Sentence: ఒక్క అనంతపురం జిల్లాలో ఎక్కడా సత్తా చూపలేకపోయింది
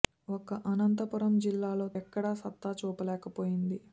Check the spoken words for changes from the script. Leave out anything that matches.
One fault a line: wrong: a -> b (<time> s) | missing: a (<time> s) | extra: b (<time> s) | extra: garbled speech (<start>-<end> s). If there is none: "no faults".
no faults